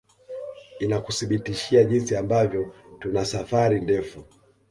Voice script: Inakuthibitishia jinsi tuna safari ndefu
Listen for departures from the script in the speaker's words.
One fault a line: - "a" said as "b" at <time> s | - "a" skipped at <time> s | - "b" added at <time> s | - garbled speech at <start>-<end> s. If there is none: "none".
- "ambavyo" added at 2.1 s